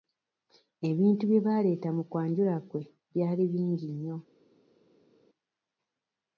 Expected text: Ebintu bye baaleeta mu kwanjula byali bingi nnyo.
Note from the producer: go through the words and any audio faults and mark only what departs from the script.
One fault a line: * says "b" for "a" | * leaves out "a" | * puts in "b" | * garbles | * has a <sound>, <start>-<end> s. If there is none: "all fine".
* puts in "kwe"